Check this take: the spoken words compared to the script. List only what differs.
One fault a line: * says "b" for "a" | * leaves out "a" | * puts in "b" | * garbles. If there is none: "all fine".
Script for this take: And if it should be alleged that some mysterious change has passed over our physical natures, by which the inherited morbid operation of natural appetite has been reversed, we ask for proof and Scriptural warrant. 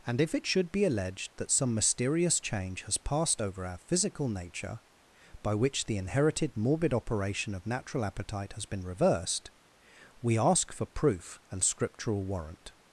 * says "nature" for "natures"